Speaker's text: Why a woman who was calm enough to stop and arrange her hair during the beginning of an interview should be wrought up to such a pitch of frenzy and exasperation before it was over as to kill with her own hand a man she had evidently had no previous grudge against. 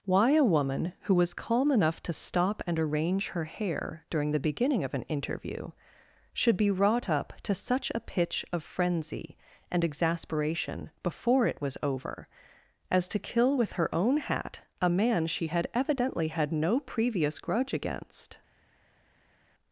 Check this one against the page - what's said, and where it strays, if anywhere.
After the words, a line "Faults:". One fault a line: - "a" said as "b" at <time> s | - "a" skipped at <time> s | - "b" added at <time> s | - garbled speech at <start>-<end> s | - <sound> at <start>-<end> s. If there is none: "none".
Why a woman who was calm enough to stop and arrange her hair during the beginning of an interview should be wrought up to such a pitch of frenzy and exasperation before it was over as to kill with her own hat a man she had evidently had no previous grudge against.
Faults:
- "hand" said as "hat" at 14.2 s